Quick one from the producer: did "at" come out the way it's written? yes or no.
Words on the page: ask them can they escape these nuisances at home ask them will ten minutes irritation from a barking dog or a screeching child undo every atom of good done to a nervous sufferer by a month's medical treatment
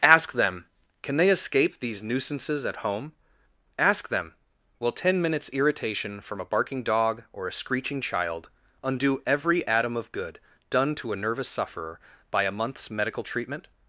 yes